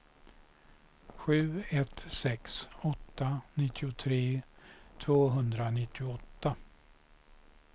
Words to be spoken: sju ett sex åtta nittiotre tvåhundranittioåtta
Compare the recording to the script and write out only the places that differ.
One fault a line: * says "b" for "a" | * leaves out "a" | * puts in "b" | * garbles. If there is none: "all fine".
all fine